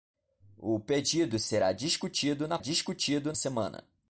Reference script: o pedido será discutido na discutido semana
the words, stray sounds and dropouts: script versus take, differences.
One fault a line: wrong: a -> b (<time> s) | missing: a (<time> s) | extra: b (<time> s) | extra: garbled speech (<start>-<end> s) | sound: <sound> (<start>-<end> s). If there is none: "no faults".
no faults